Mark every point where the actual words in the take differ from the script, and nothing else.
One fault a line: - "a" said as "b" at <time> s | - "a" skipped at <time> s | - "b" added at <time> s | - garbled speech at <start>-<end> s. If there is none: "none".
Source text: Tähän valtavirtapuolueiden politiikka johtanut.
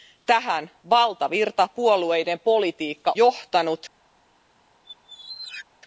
none